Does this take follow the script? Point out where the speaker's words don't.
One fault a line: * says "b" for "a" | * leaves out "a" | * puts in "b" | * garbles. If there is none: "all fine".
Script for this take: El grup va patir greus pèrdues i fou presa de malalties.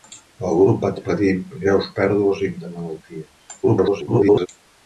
* leaves out "fou presa"
* garbles